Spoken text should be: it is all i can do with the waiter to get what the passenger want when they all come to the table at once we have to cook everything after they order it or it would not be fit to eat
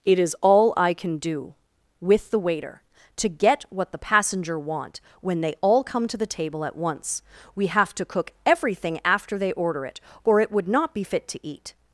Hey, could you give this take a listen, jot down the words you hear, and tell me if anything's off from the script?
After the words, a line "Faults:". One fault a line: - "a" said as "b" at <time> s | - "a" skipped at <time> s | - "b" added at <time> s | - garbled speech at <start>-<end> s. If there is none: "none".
it is all i can do with the waiter to get what the passenger want when they all come to the table at once we have to cook everything after they order it or it would not be fit to eat
Faults:
none